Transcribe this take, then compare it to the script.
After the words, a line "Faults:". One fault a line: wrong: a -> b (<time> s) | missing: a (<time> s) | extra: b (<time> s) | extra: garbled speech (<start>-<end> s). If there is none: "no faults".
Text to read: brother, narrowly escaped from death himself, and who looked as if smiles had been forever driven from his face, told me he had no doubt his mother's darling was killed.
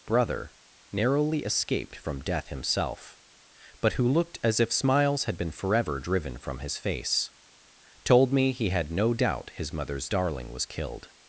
brother, narrowly escaped from death himself, but who looked as if smiles had been forever driven from his face, told me he had no doubt his mother's darling was killed.
Faults:
wrong: and -> but (3.8 s)